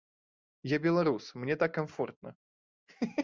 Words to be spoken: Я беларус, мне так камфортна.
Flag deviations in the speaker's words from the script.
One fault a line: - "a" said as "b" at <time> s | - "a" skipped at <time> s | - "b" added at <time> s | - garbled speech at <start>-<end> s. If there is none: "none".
none